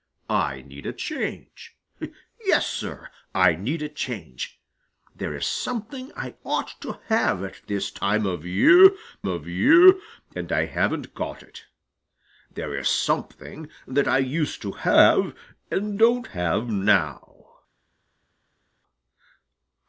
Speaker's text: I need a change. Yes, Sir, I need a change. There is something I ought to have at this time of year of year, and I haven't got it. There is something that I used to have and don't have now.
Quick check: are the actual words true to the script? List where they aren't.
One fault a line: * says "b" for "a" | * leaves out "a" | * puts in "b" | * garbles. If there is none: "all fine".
all fine